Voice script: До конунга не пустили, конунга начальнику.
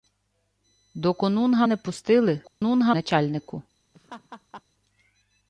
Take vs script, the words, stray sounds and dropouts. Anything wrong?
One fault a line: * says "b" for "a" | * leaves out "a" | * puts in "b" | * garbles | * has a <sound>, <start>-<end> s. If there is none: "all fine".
* has a dropout, 2.5-2.6 s
* has a laugh, 3.9-4.6 s